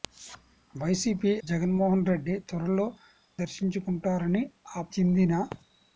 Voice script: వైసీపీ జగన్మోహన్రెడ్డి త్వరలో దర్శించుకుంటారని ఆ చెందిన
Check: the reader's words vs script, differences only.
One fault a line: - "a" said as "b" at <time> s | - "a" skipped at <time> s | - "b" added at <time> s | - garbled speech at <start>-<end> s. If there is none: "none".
none